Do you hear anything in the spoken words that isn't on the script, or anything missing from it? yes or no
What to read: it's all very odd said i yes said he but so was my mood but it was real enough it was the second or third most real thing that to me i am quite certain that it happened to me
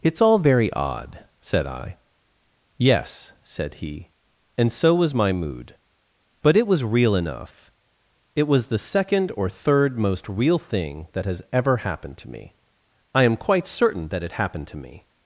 yes